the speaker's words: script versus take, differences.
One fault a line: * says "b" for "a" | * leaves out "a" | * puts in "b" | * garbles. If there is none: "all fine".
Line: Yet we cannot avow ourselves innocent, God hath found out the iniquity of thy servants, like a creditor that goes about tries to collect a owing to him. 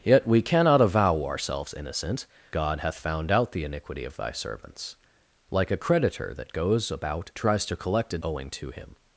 all fine